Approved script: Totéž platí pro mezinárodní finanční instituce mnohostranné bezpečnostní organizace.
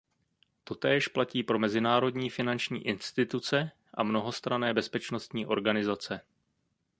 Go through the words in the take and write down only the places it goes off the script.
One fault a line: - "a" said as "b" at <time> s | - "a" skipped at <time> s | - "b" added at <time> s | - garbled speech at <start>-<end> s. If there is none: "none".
- "a" added at 3.9 s